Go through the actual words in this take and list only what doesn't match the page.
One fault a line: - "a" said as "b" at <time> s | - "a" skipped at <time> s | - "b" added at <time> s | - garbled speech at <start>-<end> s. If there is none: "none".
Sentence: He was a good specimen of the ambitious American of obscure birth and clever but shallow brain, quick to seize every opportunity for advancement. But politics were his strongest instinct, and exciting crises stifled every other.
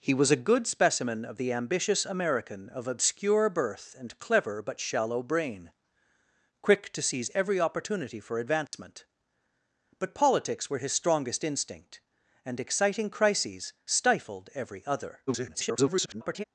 - garbled speech at 15.3-16.4 s